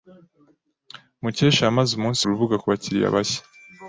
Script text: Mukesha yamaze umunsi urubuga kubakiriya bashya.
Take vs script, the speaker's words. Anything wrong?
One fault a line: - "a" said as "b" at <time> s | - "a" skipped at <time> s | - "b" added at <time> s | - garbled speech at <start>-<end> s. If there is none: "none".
none